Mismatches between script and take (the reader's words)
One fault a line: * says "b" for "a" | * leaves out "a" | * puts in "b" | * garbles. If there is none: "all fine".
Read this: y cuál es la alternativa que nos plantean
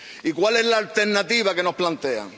all fine